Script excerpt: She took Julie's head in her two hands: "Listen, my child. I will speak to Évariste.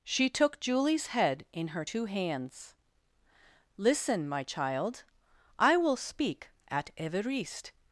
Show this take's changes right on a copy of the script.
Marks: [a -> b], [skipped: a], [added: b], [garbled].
She took Julie's head in her two hands: "Listen, my child. I will speak [to -> at] Évariste.